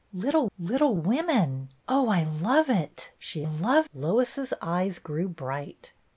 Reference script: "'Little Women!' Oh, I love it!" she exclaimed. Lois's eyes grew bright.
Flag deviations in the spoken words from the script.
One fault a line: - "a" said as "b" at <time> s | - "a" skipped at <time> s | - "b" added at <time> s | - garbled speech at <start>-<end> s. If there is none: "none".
- "little" added at 0.6 s
- "exclaimed" said as "love" at 3.4 s